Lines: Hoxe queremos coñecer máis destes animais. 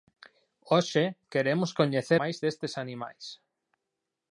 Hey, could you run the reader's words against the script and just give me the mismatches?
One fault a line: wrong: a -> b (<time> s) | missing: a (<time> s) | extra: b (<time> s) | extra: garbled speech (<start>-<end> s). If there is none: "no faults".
no faults